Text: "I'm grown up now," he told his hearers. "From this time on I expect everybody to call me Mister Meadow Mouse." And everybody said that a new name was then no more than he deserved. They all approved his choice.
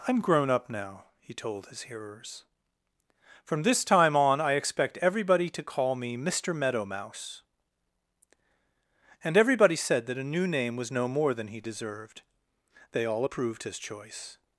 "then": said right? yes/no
no